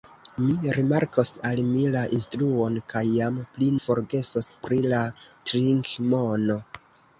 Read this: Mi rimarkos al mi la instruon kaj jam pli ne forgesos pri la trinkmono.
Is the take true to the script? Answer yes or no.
no